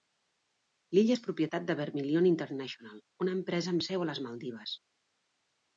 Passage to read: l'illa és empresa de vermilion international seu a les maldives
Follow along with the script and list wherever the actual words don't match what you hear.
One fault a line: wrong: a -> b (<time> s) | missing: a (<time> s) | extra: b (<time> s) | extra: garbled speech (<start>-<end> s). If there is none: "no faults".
wrong: empresa -> propietat (1.2 s)
extra: una empresa amb (3.3 s)